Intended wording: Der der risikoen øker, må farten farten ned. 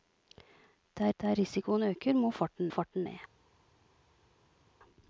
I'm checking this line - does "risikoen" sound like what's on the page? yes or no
yes